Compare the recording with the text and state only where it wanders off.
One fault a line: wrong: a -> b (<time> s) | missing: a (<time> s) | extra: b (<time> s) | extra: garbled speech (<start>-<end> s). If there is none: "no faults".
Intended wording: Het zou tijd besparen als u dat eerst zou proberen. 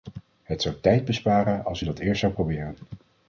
no faults